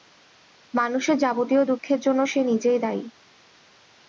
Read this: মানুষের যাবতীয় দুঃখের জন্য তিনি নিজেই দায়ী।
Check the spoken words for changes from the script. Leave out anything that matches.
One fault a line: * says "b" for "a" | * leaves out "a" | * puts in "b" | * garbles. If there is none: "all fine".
* says "সে" for "তিনি"